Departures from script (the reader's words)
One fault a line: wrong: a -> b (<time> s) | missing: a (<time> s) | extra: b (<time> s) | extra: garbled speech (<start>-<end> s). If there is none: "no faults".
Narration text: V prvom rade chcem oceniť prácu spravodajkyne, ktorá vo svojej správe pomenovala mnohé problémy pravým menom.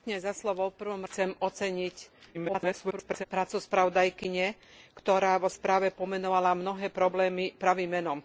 missing: rade (1.1 s)
extra: garbled speech (2.3-3.2 s)
missing: svojej (5.5 s)